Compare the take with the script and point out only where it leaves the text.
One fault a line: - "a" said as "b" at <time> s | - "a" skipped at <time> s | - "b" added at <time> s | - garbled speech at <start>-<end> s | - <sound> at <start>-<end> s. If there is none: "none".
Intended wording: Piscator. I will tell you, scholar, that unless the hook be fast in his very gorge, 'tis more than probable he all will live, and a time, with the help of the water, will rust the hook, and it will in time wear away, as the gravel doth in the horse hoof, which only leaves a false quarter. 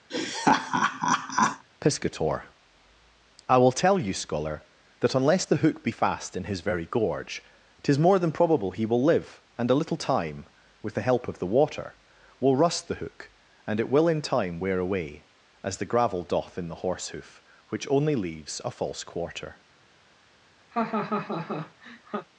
- laugh at 0.1-1.6 s
- "all" skipped at 8.9 s
- "little" added at 9.7 s
- laugh at 20.7-22.3 s